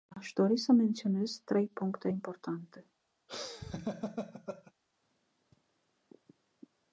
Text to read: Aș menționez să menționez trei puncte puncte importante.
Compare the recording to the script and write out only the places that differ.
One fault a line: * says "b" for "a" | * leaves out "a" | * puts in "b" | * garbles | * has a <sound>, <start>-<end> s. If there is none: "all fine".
* says "dori" for "menționez"
* leaves out "puncte"
* has a laugh, 3.3-4.7 s